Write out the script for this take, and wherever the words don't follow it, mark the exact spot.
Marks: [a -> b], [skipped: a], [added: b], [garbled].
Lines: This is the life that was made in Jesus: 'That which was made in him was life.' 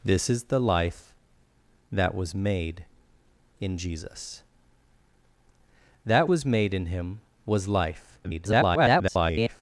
This is the life that was made in Jesus: 'That [skipped: which] was made in him was life.' [garbled]